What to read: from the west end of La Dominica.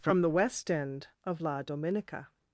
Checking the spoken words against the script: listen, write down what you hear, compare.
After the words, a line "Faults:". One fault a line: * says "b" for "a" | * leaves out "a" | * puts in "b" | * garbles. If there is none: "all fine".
from the west end of La Dominica.
Faults:
all fine